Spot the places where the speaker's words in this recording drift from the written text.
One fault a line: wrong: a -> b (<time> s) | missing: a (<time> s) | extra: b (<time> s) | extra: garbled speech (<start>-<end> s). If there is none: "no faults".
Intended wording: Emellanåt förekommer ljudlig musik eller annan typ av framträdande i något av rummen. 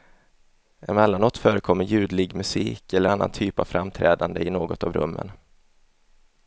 no faults